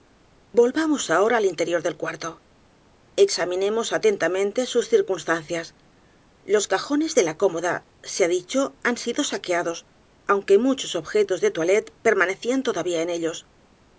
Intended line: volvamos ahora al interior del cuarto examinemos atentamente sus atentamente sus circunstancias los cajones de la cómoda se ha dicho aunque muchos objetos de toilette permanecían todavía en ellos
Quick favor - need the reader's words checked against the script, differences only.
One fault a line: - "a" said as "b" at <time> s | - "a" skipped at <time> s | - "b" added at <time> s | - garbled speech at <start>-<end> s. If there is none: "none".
- "atentamente sus" skipped at 4.9 s
- "han sido saqueados" added at 8.8 s